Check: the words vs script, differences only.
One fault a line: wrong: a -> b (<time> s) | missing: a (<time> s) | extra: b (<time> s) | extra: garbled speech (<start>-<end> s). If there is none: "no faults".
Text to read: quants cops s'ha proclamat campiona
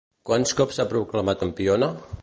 no faults